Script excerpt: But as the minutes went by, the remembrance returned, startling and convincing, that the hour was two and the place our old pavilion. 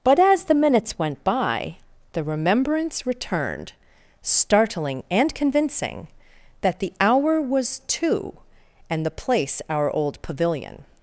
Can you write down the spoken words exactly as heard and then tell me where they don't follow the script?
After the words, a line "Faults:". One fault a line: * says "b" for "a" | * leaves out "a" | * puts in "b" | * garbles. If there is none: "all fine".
But as the minutes went by, the remembrance returned, startling and convincing, that the hour was two and the place our old pavilion.
Faults:
all fine